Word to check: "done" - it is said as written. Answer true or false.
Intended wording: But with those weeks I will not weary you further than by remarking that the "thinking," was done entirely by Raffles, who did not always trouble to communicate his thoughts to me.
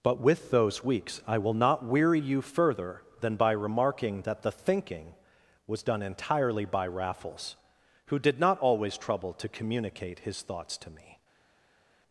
true